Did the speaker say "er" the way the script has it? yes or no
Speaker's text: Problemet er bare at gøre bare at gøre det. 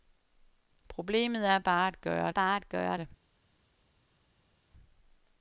yes